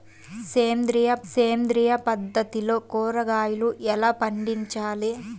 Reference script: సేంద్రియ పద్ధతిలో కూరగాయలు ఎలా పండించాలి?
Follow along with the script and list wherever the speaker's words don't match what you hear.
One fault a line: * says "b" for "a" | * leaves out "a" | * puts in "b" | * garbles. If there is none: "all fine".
* puts in "సేంద్రియ"